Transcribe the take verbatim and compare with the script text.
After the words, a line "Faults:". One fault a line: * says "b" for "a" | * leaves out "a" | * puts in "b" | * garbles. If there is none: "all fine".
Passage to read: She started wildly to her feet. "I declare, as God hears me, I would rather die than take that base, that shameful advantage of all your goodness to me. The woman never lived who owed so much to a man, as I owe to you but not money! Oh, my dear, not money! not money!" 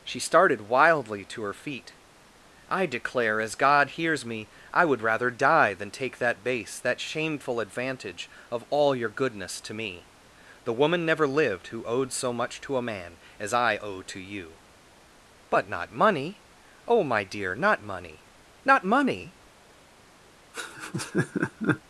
She started wildly to her feet. "I declare, as God hears me, I would rather die than take that base, that shameful advantage of all your goodness to me. The woman never lived who owed so much to a man, as I owe to you but not money! Oh, my dear, not money! not money!"
Faults:
all fine